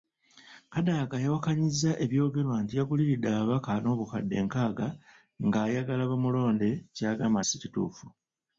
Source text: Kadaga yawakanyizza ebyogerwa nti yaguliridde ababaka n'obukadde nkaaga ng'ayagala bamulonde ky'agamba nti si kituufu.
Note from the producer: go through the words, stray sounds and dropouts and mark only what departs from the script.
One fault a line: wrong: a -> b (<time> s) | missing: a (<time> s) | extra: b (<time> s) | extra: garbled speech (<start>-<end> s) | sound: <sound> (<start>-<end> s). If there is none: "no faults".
missing: nti (7.4 s)